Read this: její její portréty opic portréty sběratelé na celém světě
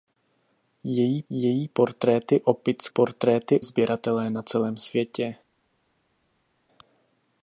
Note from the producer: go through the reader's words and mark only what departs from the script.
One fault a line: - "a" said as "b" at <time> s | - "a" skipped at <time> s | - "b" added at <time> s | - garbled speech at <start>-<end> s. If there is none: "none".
none